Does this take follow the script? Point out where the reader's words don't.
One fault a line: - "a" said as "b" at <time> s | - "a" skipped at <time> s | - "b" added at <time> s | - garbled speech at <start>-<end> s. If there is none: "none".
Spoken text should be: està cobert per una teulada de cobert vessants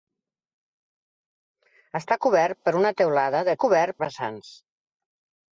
none